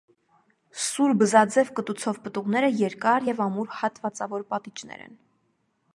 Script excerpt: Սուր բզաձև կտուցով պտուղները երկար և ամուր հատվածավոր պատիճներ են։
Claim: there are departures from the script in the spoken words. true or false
false